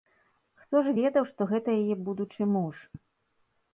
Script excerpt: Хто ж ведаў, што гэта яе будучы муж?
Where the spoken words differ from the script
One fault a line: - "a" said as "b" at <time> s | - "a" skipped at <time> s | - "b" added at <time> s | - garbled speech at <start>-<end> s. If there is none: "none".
none